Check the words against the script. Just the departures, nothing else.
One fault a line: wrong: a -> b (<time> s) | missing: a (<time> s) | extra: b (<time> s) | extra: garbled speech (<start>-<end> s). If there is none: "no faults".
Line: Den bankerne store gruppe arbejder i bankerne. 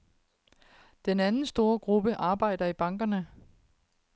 wrong: bankerne -> anden (1.2 s)